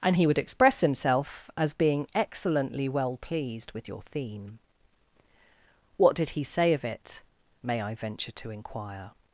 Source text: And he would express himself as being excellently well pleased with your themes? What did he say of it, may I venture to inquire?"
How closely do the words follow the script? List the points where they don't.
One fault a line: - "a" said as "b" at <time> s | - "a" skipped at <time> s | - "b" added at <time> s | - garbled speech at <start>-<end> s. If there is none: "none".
- "themes" said as "theme" at 4.0 s